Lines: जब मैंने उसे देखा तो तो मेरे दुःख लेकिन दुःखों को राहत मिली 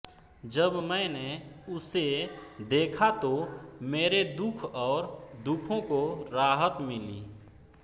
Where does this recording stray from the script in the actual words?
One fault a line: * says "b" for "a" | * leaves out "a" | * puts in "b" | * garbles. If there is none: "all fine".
* leaves out "तो"
* says "और" for "लेकिन"